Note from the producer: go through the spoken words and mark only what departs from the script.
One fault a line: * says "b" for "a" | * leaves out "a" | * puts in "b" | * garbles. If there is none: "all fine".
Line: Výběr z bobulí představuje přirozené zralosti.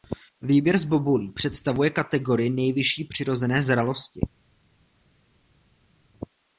* puts in "kategorii nejvyšší"